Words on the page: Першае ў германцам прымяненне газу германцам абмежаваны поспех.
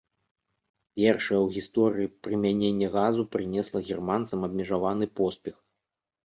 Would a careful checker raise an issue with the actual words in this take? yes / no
yes